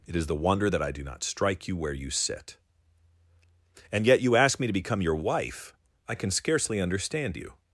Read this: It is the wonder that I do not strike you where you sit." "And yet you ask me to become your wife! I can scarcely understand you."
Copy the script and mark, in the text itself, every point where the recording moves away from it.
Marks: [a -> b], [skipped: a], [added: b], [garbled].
It is the wonder that I do not strike you where you sit." "And yet you ask me to become your wife! I can scarcely understand you."